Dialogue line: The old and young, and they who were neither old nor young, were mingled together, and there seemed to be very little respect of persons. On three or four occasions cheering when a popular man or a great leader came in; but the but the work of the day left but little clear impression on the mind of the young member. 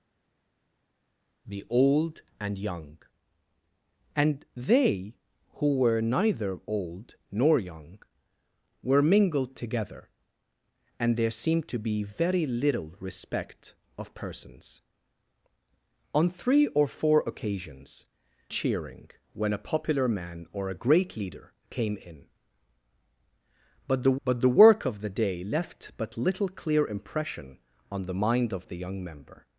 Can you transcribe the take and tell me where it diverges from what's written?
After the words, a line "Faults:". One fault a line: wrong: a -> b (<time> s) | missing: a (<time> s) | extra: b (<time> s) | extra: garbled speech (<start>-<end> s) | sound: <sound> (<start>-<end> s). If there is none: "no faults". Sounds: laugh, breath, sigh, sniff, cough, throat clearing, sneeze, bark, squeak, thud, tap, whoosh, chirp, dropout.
The old and young, and they who were neither old nor young, were mingled together, and there seemed to be very little respect of persons. On three or four occasions cheering when a popular man or a great leader came in; but the but the work of the day left but little clear impression on the mind of the young member.
Faults:
no faults